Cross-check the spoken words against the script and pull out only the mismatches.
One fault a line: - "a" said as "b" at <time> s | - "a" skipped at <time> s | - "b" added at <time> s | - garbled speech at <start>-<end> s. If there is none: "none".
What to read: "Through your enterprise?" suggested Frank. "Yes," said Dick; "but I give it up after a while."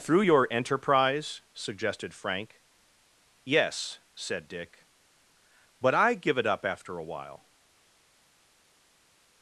none